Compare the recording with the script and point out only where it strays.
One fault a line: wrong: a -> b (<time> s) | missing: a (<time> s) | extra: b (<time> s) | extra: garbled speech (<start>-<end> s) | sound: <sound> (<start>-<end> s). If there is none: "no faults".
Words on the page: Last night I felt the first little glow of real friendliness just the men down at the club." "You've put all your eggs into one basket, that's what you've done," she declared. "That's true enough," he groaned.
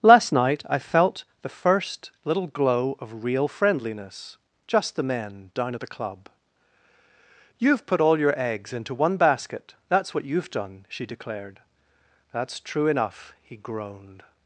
no faults